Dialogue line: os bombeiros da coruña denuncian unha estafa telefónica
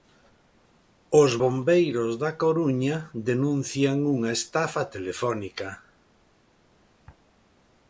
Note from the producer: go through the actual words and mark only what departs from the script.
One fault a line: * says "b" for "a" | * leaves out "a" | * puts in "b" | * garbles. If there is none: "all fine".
all fine